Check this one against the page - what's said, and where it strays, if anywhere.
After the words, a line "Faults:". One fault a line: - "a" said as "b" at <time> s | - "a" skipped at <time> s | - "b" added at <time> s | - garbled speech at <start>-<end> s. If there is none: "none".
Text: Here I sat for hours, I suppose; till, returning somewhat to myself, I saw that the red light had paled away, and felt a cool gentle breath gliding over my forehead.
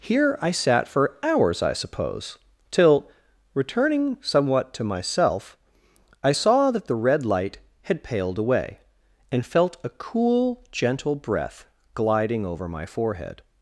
Here I sat for hours, I suppose; till, returning somewhat to myself, I saw that the red light had paled away, and felt a cool gentle breath gliding over my forehead.
Faults:
none